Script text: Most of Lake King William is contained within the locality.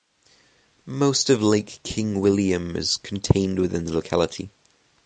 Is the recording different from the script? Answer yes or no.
no